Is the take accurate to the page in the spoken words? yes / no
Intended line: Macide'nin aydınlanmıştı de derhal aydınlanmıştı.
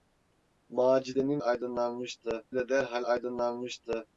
yes